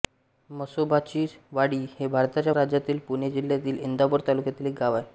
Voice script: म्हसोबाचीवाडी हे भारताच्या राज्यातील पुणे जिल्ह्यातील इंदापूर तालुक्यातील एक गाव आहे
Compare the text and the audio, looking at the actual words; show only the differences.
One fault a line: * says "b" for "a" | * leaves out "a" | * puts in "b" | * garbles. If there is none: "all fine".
all fine